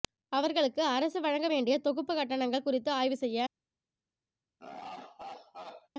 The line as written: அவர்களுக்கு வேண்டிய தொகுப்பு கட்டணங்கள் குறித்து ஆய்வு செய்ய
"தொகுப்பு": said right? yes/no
yes